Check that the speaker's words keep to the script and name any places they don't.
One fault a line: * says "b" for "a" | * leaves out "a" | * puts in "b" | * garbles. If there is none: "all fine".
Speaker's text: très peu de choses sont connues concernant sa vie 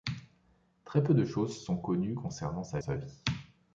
* puts in "sa"